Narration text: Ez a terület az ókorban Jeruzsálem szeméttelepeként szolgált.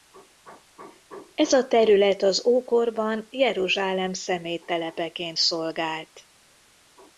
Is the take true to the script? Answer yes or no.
yes